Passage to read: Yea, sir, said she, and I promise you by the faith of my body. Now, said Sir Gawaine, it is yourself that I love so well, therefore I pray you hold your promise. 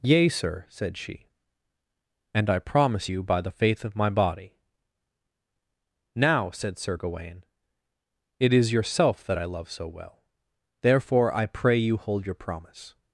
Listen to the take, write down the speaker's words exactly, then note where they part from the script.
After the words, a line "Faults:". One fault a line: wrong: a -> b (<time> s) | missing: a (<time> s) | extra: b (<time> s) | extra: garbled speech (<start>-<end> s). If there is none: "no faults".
Yea, sir, said she, and I promise you by the faith of my body. Now, said Sir Gawaine, it is yourself that I love so well, therefore I pray you hold your promise.
Faults:
no faults